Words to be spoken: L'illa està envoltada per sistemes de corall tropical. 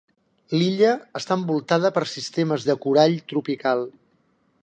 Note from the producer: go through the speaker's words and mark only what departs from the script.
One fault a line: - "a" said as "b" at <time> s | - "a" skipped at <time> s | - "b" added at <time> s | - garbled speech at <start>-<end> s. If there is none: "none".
none